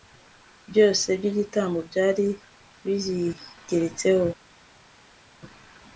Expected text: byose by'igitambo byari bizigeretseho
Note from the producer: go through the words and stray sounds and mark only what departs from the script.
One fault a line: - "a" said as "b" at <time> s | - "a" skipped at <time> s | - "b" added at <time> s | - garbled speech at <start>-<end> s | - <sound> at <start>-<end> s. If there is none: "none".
none